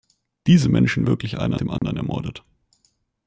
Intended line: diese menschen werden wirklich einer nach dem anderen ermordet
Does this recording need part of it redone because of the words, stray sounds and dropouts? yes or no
yes